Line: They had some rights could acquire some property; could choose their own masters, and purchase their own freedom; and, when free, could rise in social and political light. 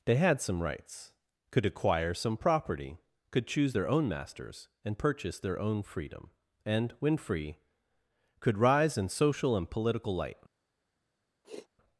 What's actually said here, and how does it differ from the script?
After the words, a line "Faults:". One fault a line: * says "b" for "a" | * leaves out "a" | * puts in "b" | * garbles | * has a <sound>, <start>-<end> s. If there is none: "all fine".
They had some rights could acquire some property; could choose their own masters, and purchase their own freedom; and, when free, could rise in social and political light.
Faults:
* has a sniff, 11.4-11.7 s